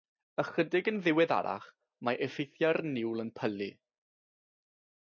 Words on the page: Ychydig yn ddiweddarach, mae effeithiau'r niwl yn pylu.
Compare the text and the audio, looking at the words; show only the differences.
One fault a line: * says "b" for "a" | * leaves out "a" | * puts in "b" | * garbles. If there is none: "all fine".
all fine